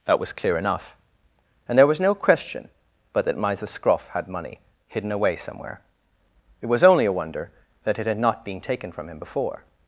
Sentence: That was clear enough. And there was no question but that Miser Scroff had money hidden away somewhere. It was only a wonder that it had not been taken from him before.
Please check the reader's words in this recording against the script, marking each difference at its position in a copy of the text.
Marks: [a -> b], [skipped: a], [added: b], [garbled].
That was clear enough. And there was no question but that Miser Scroff had money hidden away somewhere. It was only a wonder that it had not been taken from him before.